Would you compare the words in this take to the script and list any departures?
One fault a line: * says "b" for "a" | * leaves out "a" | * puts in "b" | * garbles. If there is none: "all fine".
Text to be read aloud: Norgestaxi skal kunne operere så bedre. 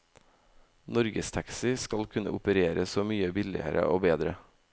* puts in "mye billigere og"